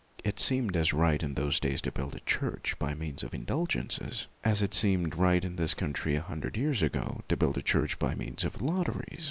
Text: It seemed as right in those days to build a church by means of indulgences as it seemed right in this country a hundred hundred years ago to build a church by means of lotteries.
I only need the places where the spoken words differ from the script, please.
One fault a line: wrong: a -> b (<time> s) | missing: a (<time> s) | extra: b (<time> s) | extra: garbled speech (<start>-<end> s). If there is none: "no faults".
missing: hundred (6.6 s)